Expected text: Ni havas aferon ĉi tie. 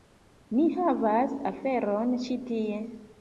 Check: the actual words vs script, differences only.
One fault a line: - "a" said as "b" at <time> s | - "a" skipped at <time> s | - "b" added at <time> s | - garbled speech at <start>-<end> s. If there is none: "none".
none